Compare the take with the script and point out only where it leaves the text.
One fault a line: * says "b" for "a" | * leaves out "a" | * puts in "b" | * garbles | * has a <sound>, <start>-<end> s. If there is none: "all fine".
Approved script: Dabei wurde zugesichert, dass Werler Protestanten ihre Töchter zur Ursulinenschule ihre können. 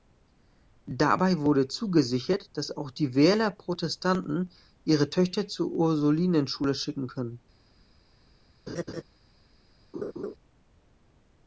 * puts in "auch die"
* says "schicken" for "ihre"
* has a laugh, 8.7-9.0 s
* has a laugh, 9.9-10.3 s